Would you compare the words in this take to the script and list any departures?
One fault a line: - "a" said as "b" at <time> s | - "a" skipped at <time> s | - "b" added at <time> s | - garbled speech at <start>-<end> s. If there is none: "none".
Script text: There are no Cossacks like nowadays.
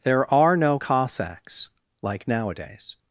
none